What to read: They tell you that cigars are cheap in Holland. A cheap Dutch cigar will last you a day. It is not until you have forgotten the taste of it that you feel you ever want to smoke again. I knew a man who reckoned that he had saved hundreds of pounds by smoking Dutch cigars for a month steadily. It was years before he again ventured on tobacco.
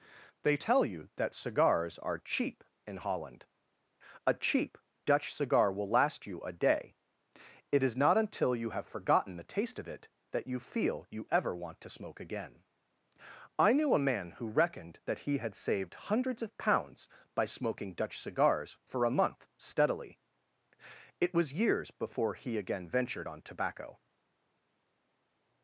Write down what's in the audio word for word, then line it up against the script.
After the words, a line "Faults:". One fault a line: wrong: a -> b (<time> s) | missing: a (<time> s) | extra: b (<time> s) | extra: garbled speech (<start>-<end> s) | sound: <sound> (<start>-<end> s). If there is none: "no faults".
They tell you that cigars are cheap in Holland. A cheap Dutch cigar will last you a day. It is not until you have forgotten the taste of it that you feel you ever want to smoke again. I knew a man who reckoned that he had saved hundreds of pounds by smoking Dutch cigars for a month steadily. It was years before he again ventured on tobacco.
Faults:
no faults